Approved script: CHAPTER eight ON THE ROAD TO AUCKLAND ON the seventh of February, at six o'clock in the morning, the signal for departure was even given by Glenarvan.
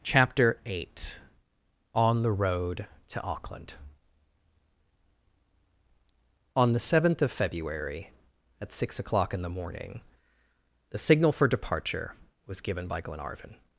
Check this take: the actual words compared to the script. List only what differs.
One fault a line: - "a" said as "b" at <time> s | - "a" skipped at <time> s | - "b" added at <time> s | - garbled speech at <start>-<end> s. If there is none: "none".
- "even" skipped at 12.6 s